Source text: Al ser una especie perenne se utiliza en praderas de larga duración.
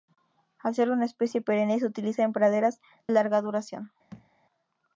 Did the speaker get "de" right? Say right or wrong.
wrong